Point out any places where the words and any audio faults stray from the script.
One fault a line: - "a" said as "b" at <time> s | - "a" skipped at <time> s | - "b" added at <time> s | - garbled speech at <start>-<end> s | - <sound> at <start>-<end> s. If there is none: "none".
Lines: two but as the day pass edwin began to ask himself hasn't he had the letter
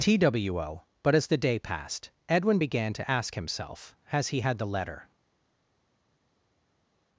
- "pass" said as "passed" at 1.6 s
- "hasn't" said as "has" at 4.1 s